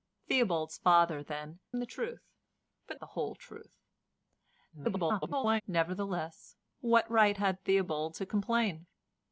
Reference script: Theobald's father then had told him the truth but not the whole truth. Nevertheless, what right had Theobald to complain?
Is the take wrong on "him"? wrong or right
wrong